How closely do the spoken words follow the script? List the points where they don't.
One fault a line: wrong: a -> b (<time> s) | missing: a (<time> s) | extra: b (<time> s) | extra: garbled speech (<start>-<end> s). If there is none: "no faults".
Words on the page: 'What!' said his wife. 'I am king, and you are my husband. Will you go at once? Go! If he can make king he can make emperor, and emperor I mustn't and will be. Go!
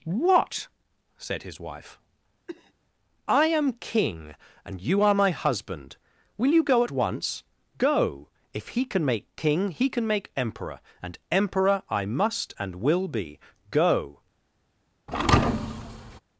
wrong: mustn't -> must (12.0 s)